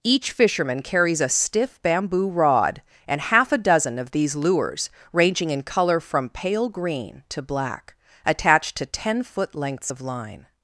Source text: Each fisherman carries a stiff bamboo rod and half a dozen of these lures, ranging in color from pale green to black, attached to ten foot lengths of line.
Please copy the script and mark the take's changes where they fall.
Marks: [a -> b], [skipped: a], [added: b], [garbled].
Each fisherman carries a stiff bamboo rod and half a dozen of these lures, ranging in color from pale green to black, attached to ten foot lengths of line.